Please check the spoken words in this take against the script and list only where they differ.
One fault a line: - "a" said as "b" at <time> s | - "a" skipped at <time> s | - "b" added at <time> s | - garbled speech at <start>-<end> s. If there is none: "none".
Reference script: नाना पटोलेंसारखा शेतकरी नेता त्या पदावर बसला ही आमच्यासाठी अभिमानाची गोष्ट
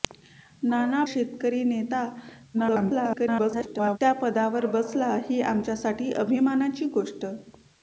- "पटोलेंसारखा" skipped at 1.0 s
- garbled speech at 2.5-4.0 s